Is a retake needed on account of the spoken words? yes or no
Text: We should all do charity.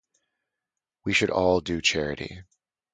no